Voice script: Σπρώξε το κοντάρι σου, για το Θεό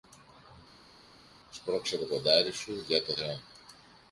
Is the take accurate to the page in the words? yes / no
yes